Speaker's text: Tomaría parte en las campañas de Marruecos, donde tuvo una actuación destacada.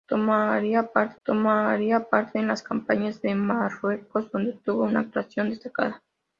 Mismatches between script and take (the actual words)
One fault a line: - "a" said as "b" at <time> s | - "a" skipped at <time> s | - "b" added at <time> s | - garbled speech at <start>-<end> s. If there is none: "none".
- "tomaría parte" added at 1.2 s